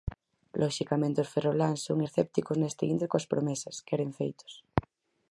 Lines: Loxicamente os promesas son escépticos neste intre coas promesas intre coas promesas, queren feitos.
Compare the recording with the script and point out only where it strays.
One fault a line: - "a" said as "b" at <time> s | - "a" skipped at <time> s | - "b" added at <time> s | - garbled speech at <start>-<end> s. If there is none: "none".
- "promesas" said as "ferroláns" at 1.3 s
- "intre coas promesas" skipped at 3.8 s